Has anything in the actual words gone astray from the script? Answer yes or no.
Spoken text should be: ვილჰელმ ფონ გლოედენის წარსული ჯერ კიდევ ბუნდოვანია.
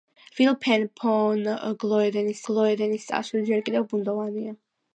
yes